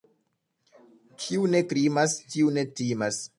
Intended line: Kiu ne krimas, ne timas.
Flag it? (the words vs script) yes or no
yes